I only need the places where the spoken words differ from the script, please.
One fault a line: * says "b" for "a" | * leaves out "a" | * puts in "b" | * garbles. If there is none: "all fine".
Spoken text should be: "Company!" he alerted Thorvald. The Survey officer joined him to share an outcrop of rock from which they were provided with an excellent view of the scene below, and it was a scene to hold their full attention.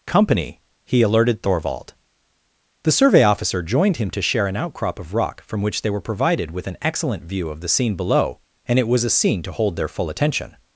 all fine